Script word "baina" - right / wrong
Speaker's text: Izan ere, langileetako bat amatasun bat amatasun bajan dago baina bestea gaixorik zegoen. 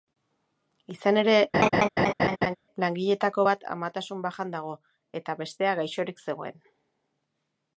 wrong